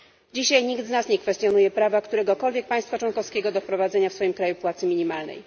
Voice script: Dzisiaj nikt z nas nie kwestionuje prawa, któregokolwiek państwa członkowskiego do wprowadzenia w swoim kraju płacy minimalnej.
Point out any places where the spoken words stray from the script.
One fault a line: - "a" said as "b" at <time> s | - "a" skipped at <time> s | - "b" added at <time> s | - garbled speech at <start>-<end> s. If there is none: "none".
none